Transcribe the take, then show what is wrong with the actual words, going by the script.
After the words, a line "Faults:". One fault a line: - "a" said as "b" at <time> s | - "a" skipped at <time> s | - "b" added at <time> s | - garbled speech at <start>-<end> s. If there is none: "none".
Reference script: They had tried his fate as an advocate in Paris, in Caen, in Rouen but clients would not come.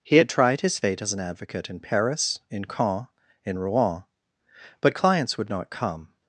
He had tried his fate as an advocate in Paris, in Caen, in Rouen but clients would not come.
Faults:
- "They" said as "He" at 0.0 s